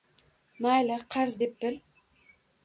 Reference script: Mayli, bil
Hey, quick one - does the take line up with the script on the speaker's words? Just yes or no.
no